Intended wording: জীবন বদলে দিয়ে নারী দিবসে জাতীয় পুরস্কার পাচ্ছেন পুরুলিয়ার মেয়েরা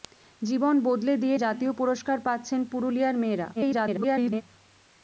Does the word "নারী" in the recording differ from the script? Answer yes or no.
yes